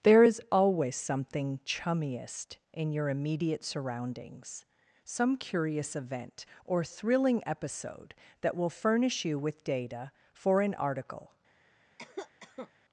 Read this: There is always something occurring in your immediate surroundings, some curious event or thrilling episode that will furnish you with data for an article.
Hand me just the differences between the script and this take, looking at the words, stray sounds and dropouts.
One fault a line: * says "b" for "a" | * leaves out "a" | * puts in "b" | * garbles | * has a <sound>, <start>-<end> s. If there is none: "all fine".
* says "chummiest" for "occurring"
* has a cough, 12.0-12.7 s